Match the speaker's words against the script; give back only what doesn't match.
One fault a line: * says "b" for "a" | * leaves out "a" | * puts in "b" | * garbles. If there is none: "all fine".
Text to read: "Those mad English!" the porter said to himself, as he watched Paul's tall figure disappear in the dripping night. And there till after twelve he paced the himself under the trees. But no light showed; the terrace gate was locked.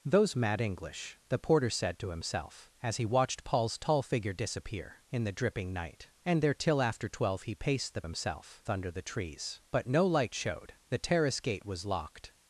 all fine